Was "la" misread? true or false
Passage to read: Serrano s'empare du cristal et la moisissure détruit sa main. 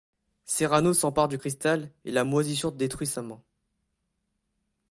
false